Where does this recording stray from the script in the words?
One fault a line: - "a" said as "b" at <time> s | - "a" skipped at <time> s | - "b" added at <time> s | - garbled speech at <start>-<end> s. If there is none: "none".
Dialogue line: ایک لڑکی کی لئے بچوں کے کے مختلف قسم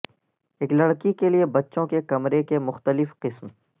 - "کی" said as "کے" at 1.1 s
- "کمرے" added at 2.0 s